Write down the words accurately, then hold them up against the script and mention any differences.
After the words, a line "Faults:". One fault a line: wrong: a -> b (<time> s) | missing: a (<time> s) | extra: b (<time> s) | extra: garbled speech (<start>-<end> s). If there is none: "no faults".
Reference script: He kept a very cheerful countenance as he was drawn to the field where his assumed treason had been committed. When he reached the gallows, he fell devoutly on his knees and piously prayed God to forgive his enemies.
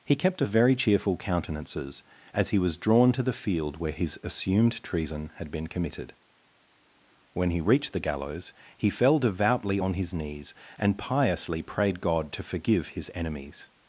He kept a very cheerful countenances as he was drawn to the field where his assumed treason had been committed. When he reached the gallows, he fell devoutly on his knees and piously prayed God to forgive his enemies.
Faults:
wrong: countenance -> countenances (1.2 s)